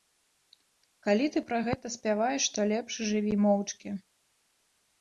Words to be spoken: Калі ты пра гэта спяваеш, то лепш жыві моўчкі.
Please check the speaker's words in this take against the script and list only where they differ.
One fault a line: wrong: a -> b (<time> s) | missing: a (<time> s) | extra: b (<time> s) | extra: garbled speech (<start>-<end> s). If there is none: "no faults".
no faults